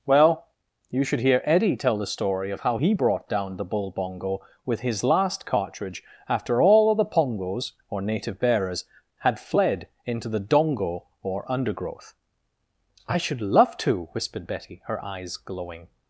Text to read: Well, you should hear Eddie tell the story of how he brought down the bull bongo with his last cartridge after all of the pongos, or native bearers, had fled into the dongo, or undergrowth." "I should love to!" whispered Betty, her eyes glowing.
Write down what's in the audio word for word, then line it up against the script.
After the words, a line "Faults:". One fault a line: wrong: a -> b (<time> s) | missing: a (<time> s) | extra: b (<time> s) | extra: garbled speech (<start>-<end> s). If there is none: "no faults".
Well, you should hear Eddie tell the story of how he brought down the bull bongo with his last cartridge after all of the pongos, or native bearers, had fled into the dongo, or undergrowth." "I should love to!" whispered Betty, her eyes glowing.
Faults:
no faults